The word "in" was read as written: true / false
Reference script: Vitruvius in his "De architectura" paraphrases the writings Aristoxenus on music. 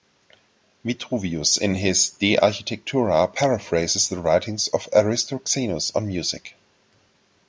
true